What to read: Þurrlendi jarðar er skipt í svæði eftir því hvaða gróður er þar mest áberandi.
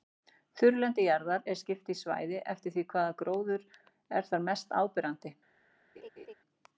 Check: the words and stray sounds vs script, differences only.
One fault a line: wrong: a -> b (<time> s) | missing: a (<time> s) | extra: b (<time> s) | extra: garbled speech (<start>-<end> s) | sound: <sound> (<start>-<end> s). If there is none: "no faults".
sound: laugh (6.0-6.3 s)